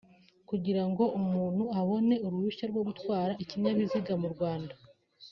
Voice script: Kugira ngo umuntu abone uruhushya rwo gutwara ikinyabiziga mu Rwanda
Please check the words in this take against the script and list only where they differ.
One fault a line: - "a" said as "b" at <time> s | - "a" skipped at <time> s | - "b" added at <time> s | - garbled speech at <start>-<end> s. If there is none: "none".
none